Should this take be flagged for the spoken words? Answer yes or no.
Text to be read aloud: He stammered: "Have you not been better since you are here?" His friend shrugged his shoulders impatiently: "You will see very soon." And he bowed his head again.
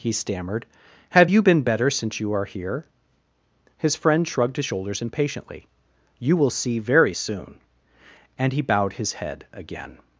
yes